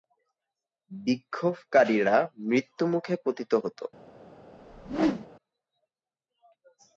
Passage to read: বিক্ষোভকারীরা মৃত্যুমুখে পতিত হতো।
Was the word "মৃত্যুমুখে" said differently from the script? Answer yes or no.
no